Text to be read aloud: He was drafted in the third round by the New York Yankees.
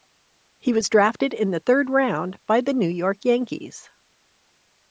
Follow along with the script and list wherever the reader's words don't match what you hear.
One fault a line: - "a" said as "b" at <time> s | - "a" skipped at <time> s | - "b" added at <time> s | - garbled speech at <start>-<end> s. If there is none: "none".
none